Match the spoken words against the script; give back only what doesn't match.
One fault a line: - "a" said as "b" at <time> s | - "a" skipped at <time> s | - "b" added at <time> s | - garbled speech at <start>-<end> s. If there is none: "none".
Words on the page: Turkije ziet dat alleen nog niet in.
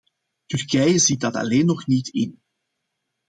none